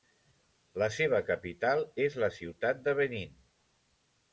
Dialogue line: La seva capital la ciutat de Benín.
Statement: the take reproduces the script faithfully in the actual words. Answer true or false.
false